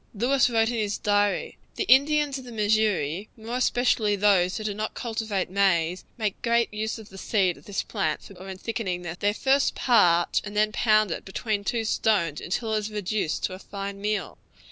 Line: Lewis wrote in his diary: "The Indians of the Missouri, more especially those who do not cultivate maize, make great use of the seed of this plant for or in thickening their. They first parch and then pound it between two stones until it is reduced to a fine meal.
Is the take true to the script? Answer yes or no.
yes